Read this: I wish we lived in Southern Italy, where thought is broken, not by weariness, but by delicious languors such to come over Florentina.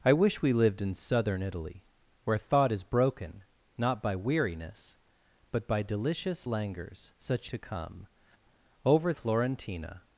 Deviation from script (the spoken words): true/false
false